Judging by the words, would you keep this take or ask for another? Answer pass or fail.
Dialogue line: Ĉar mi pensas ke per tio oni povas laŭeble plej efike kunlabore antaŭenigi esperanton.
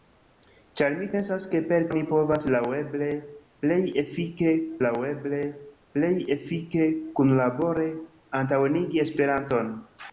fail